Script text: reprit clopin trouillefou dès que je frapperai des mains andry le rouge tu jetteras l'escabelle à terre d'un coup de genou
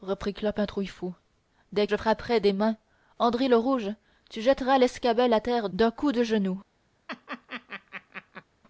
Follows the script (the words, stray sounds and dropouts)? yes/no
no